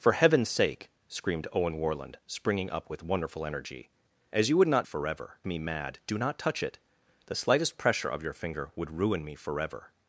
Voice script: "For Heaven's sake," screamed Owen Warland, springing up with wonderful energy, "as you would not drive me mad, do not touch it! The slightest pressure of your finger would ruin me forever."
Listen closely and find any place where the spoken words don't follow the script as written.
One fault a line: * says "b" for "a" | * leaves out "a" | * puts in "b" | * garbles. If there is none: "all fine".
* says "forever" for "drive"